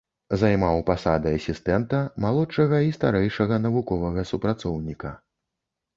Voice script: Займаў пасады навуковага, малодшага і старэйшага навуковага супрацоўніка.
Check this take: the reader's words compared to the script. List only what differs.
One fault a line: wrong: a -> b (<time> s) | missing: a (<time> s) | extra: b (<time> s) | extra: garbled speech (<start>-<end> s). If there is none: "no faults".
wrong: навуковага -> асістэнта (1.4 s)